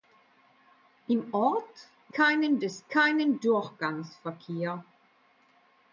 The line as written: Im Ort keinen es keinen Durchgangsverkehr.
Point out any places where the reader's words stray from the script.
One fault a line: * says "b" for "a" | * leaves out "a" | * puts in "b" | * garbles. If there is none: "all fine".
all fine